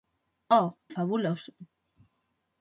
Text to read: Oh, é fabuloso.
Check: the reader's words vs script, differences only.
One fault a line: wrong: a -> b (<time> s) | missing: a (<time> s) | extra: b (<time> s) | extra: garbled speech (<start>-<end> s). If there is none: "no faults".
no faults